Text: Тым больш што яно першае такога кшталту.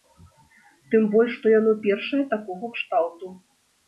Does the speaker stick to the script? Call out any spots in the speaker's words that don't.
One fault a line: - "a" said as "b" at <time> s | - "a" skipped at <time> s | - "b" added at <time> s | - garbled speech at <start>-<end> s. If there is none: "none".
none